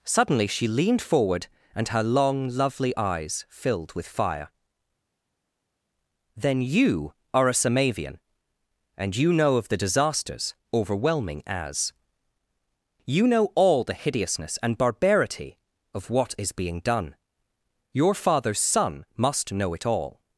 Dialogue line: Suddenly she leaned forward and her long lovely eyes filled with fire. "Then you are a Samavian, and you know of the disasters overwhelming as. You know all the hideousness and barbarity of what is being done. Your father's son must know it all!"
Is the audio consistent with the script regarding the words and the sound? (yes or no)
yes